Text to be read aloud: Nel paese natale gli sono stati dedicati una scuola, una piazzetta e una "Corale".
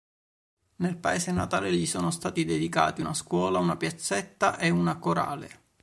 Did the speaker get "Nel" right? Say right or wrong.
right